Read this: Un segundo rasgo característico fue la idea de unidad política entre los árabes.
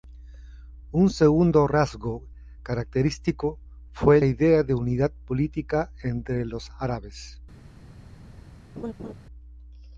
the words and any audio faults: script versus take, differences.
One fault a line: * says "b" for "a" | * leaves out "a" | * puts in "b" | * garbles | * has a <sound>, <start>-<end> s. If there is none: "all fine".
* leaves out "la"
* has a laugh, 8.8-9.1 s